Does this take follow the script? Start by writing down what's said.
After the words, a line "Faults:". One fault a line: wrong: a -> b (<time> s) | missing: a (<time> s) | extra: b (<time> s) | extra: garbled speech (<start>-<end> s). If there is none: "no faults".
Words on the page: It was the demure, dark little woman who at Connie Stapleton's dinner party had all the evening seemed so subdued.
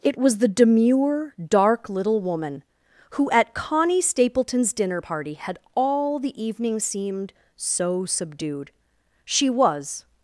It was the demure, dark little woman who at Connie Stapleton's dinner party had all the evening seemed so subdued. She was
Faults:
extra: She was (9.2 s)